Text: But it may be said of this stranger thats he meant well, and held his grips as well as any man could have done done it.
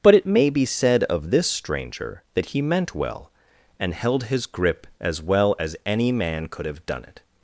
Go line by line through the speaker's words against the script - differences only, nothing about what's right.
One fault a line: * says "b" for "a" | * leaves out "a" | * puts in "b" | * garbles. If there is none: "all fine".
* says "that" for "thats"
* says "grip" for "grips"
* leaves out "done"